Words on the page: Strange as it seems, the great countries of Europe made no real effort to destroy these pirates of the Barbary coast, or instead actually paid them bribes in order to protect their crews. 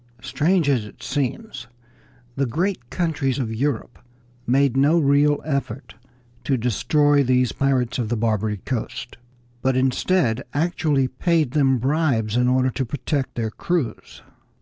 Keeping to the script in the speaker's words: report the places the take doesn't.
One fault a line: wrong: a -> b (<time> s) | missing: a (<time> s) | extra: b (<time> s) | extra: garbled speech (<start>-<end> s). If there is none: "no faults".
wrong: or -> but (9.6 s)